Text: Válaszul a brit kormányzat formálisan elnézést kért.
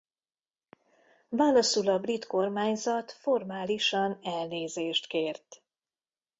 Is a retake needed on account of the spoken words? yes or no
no